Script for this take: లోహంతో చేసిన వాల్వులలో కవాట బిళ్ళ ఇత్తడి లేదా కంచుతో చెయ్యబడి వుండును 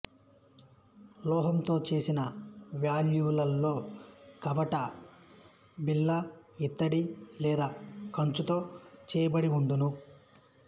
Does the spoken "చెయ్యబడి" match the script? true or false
true